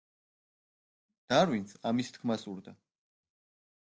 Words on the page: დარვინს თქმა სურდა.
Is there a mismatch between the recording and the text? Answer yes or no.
yes